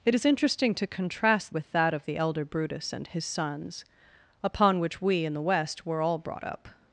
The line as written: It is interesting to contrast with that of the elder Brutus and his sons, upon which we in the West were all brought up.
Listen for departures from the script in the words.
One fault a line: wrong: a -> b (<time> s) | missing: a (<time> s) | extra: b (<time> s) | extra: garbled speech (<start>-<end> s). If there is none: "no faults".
no faults